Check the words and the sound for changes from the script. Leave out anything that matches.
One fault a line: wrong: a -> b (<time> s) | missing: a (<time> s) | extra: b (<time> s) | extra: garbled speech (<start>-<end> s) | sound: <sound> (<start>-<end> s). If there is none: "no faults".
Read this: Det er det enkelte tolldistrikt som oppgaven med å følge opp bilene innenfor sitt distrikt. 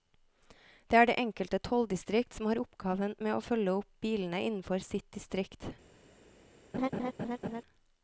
extra: har (2.5 s)
sound: laugh (6.7-7.6 s)